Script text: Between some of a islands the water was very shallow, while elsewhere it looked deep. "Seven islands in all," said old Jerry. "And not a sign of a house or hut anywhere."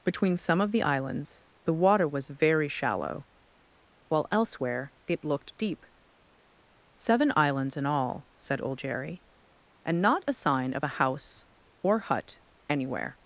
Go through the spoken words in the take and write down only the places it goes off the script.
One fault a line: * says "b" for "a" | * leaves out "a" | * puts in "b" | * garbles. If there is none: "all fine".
* says "the" for "a"